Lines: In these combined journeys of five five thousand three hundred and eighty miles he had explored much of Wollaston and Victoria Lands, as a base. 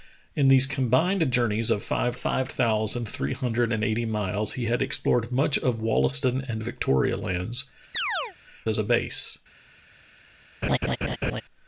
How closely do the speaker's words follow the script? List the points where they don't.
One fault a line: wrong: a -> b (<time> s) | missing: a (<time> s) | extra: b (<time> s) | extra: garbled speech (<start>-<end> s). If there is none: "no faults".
no faults